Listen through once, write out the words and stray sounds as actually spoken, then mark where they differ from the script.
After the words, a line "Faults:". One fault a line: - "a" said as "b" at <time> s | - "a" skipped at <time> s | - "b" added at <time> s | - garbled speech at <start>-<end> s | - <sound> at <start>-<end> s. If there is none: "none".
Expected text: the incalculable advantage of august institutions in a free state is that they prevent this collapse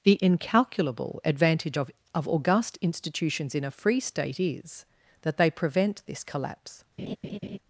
the incalculable advantage of of august institutions in a free state is that they prevent this collapse
Faults:
- "of" added at 2.1 s
- laugh at 7.0-7.6 s